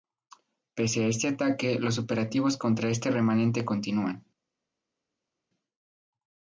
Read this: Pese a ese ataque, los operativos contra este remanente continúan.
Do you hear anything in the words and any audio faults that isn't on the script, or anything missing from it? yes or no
yes